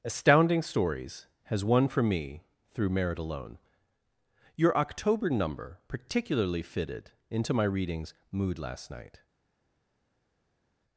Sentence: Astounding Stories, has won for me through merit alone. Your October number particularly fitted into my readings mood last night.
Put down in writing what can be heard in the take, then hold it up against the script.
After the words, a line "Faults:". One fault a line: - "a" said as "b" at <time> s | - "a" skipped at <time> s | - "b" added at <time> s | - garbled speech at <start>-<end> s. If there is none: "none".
Astounding Stories, has won for me through merit alone. Your October number particularly fitted into my readings mood last night.
Faults:
none